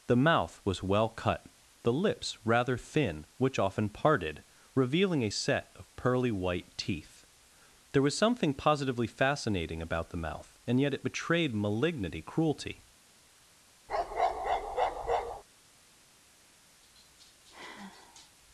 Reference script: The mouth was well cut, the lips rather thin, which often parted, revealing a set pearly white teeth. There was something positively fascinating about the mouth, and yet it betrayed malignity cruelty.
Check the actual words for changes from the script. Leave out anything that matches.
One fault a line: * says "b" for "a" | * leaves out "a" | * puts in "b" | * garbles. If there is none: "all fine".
* puts in "of"